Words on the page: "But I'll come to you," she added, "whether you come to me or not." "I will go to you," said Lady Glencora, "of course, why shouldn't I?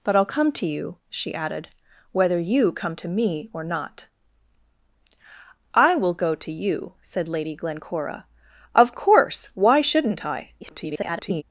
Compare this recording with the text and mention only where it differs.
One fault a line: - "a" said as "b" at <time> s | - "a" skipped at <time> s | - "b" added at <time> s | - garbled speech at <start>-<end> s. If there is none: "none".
- garbled speech at 10.6-11.4 s